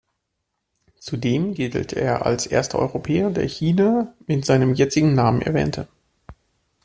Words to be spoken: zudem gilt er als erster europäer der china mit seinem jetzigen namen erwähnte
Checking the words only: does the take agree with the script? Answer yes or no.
yes